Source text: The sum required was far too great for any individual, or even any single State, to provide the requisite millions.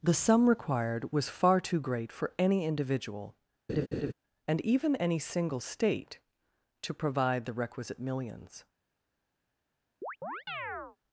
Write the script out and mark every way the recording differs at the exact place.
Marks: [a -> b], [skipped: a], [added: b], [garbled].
The sum required was far too great for any individual, [or -> and] even any single State, to provide the requisite millions.